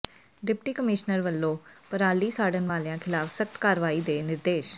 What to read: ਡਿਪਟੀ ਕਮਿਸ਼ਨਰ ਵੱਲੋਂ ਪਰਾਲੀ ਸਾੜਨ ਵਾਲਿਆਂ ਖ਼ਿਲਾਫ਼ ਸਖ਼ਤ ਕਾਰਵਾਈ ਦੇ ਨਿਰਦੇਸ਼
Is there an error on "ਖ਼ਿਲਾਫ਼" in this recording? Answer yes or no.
no